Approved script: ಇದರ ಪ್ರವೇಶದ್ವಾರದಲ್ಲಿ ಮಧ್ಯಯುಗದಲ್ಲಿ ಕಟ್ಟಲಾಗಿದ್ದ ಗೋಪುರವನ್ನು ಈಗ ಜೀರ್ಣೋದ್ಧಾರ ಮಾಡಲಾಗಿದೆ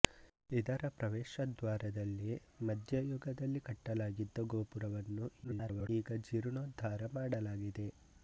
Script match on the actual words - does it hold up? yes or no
no